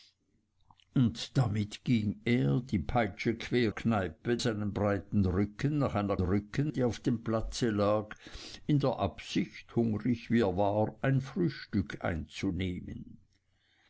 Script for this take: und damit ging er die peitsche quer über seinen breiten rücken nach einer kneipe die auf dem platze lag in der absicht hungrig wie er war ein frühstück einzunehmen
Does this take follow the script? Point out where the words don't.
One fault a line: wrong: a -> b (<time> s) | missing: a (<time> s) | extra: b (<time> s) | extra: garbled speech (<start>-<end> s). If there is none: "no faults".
wrong: über -> kneipe (3.7 s)
wrong: kneipe -> rücken (6.2 s)